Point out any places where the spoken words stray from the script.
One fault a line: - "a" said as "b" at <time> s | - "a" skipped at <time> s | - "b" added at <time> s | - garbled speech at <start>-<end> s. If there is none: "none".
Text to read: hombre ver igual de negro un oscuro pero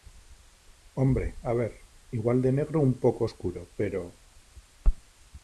- "a" added at 1.4 s
- "poco" added at 3.0 s